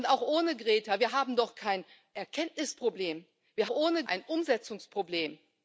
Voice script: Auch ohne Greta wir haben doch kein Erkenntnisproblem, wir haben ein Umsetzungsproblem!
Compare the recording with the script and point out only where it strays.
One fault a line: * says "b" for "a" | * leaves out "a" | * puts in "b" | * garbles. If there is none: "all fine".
* says "ohne" for "haben"